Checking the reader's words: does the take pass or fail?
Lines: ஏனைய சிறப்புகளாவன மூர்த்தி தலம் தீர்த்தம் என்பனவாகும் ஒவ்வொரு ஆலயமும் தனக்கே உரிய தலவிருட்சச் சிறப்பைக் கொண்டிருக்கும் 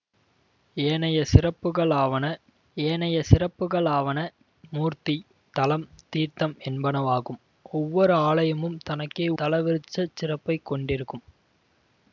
fail